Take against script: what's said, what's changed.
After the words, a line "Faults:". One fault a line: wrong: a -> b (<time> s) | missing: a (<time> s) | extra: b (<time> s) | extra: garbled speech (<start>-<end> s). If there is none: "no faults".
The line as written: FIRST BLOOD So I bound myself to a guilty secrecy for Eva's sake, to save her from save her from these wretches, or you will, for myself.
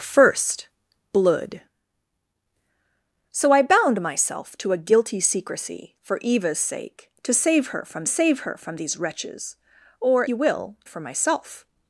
FIRST BLOOD So I bound myself to a guilty secrecy for Eva's sake, to save her from save her from these wretches, or you will, for myself.
Faults:
no faults